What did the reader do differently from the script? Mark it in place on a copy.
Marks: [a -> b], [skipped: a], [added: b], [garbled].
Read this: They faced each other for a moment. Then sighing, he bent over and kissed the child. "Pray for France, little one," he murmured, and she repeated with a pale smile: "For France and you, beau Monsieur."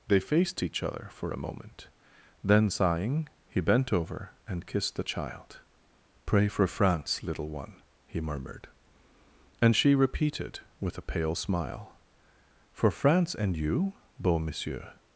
They faced each other for a moment. Then sighing, he bent over and kissed the child. "Pray for France, little one," he murmured, and she repeated with a pale smile: "For France and you, beau Monsieur."